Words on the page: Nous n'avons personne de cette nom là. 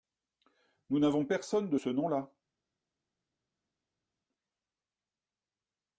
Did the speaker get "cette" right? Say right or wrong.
wrong